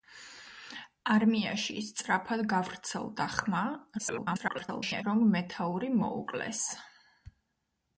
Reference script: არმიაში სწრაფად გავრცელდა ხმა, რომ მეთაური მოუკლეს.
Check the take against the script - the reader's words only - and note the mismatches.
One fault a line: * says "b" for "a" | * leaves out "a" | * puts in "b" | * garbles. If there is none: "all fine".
* garbles